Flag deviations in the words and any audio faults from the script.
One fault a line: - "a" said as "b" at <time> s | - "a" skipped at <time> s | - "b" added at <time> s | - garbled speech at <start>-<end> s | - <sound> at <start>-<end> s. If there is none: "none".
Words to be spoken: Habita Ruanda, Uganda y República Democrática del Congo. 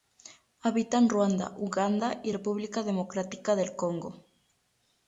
- "en" added at 1.0 s